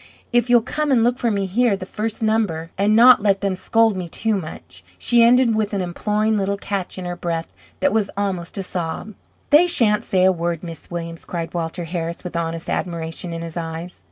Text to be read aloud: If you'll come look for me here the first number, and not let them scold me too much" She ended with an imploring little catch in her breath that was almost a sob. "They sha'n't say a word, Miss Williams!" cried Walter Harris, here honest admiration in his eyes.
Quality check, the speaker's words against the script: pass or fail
fail